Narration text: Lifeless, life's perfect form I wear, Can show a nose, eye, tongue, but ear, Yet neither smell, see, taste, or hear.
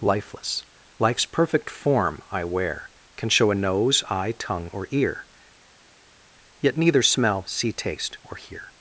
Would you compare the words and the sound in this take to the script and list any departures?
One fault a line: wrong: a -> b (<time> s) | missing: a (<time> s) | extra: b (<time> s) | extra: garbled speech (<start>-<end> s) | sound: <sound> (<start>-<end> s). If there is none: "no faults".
wrong: but -> or (4.7 s)